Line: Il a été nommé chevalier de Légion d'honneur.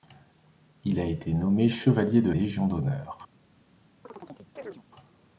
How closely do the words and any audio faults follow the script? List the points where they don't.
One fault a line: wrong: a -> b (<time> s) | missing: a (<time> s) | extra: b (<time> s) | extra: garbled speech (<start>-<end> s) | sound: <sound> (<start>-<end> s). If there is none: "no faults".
sound: chirp (4.0-4.8 s)